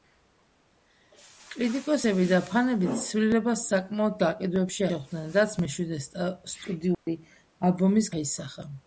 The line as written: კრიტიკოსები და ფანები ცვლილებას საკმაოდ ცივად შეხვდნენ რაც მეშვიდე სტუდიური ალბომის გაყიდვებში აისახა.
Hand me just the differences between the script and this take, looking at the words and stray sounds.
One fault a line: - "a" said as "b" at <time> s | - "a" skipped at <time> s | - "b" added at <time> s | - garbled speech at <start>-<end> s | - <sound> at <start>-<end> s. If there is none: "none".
- "ცივად" said as "გაყიდვებში" at 4.2 s
- dropout at 6.9-7.1 s
- "გაყიდვებში" skipped at 8.1 s